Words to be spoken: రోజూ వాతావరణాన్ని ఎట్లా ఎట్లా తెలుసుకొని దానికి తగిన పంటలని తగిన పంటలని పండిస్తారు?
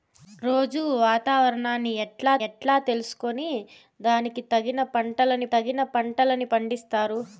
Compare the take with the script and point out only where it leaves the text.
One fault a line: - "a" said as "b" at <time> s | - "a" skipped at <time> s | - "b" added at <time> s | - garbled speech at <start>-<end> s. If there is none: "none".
none